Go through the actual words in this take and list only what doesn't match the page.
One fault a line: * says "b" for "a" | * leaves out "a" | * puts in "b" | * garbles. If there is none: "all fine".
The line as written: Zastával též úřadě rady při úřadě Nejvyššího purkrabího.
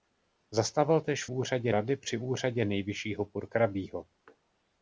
all fine